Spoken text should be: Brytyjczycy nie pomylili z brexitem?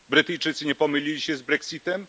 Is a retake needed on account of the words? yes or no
yes